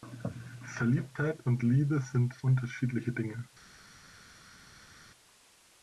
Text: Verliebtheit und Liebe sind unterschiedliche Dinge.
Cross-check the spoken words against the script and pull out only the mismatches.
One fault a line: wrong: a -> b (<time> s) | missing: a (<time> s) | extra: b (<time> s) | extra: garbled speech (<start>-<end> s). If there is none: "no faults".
no faults